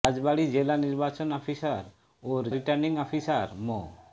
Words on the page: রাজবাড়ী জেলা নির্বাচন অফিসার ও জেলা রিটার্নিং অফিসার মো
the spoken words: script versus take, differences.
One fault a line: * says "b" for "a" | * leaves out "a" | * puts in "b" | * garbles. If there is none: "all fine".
* leaves out "জেলা"